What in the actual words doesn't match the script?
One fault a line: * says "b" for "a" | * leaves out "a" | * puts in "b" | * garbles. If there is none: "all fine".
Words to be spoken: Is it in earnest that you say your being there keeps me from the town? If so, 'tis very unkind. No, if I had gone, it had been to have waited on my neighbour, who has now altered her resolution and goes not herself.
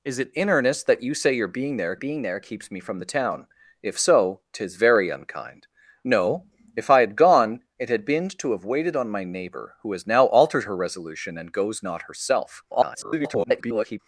* puts in "being there"
* garbles